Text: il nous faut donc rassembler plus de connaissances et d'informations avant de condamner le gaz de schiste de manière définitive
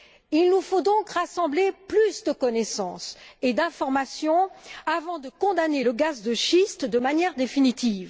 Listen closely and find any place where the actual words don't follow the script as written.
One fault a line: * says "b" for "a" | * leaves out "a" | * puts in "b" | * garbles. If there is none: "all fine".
all fine